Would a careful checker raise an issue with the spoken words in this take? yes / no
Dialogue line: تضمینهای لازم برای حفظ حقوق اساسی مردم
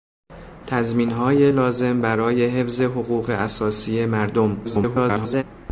yes